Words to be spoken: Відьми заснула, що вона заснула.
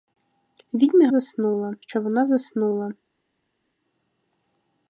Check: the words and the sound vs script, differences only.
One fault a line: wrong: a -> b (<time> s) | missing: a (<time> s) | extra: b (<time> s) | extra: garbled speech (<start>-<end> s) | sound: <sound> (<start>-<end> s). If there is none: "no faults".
no faults